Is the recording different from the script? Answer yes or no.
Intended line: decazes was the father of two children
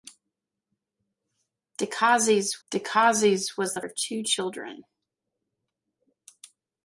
yes